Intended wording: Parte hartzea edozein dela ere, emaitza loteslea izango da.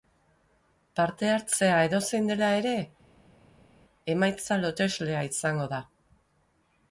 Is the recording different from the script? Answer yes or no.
no